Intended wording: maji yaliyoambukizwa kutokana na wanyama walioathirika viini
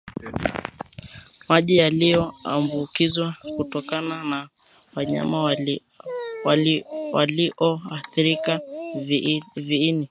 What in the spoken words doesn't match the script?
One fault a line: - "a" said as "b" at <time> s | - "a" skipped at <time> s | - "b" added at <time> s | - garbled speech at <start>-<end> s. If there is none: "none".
none